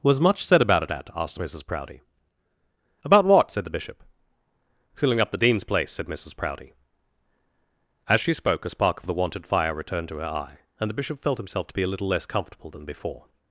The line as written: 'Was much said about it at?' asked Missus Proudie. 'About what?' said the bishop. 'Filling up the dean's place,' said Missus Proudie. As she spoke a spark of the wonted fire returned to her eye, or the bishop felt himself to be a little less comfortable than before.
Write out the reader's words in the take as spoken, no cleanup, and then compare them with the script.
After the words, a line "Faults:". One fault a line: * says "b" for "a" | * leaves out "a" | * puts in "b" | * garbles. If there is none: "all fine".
'Was much said about it at?' asked Missus Proudie. 'About what?' said the bishop. 'Filling up the dean's place,' said Missus Proudie. As she spoke a spark of the wonted fire returned to her eye, and the bishop felt himself to be a little less comfortable than before.
Faults:
* says "and" for "or"